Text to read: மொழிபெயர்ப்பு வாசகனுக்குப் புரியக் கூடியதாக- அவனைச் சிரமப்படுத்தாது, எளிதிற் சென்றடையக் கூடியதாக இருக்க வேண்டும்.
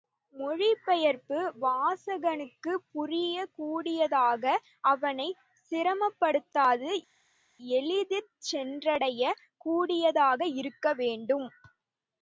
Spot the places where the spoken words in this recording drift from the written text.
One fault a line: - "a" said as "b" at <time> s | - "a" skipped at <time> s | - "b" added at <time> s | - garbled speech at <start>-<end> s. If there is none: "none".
none